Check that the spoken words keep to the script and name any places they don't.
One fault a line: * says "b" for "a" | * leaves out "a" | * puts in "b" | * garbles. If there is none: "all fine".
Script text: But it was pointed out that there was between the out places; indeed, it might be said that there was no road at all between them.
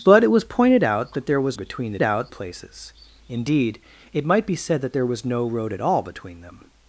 all fine